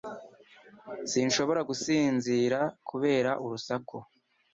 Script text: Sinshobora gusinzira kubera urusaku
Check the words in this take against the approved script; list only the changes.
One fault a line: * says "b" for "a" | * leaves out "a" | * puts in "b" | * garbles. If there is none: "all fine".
all fine